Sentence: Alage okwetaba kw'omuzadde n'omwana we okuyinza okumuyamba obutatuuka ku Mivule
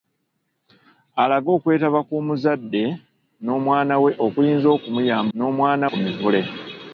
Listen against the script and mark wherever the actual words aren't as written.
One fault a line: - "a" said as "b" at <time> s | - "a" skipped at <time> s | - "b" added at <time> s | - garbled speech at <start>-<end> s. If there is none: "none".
- "obutatuuka" said as "n'omwana" at 5.4 s